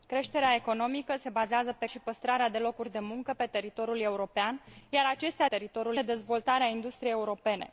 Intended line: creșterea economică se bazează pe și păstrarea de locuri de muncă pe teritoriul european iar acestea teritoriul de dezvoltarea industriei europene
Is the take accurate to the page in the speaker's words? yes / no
yes